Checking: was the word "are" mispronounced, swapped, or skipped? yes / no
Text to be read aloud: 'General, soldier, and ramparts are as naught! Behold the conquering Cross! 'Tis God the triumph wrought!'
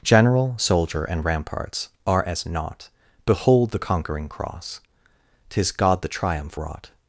no